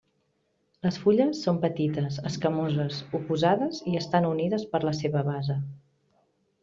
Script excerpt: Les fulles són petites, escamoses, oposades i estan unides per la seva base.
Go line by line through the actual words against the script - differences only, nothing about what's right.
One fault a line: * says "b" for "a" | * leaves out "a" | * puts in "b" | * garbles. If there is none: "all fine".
all fine